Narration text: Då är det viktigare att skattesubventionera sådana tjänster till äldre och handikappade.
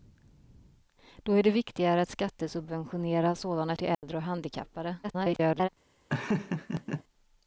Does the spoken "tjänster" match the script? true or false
false